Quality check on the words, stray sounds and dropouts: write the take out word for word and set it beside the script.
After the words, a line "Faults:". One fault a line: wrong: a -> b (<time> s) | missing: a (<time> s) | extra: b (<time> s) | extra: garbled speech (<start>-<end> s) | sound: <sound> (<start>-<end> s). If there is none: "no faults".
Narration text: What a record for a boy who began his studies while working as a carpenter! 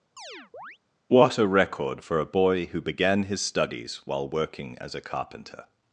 What a record for a boy who began his studies while working as a carpenter!
Faults:
sound: chirp (0.2-0.8 s)